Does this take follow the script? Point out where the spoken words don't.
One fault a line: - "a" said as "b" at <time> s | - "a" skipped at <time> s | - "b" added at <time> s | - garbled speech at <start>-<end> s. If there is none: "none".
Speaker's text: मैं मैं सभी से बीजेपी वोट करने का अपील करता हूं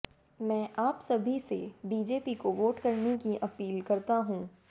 - "मैं" said as "आप" at 0.8 s
- "को" added at 2.3 s
- "का" said as "की" at 3.2 s